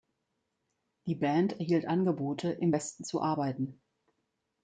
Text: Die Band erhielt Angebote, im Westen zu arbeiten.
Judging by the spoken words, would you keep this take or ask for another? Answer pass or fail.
pass